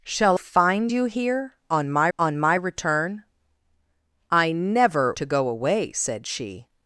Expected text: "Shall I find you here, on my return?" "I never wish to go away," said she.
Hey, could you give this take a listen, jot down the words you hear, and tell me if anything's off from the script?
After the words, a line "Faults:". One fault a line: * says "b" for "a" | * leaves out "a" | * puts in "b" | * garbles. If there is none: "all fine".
"Shall find you here, on my on my return?" "I never to go away," said she.
Faults:
* leaves out "I"
* puts in "on my"
* leaves out "wish"